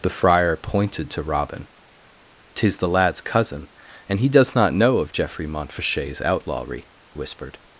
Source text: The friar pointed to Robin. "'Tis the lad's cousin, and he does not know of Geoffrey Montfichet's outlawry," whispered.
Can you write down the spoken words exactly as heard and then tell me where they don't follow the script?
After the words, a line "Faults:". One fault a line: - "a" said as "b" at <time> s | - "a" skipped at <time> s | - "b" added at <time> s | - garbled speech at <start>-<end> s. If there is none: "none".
The friar pointed to Robin. "'Tis the lad's cousin, and he does not know of Geoffrey Montfichet's outlawry," whispered.
Faults:
none